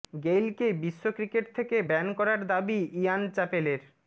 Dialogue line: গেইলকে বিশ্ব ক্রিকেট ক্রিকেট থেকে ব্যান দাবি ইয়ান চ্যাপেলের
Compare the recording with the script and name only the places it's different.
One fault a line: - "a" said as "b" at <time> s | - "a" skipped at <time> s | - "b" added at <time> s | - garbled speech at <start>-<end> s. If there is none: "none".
- "ক্রিকেট" skipped at 1.4 s
- "করার" added at 2.2 s